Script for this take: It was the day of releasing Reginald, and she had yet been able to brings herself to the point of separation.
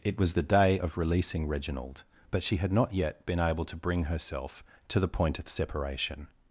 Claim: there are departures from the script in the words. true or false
true